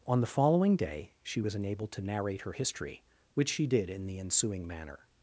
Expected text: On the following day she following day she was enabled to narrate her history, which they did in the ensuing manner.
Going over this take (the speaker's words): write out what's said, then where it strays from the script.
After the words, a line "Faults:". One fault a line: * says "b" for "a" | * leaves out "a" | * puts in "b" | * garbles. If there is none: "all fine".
On the following day she was enabled to narrate her history, which she did in the ensuing manner.
Faults:
* leaves out "following day she"
* says "she" for "they"